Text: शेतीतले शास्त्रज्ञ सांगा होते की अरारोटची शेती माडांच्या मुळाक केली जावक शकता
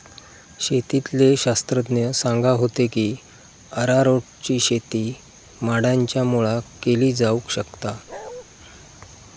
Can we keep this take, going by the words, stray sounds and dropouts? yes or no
no